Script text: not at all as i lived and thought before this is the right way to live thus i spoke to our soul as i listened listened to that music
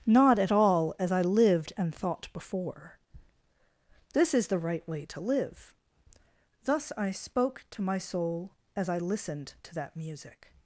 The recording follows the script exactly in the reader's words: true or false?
false